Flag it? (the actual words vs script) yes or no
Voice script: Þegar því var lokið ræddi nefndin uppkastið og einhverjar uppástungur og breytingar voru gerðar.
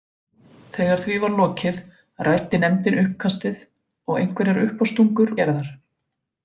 yes